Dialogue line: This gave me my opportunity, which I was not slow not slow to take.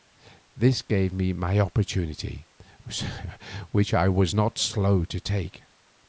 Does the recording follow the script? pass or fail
fail